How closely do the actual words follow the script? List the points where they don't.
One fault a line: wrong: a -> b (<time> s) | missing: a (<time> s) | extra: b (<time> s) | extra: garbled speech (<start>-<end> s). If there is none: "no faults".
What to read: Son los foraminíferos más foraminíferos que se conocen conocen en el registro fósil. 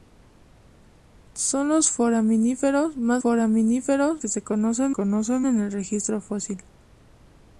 no faults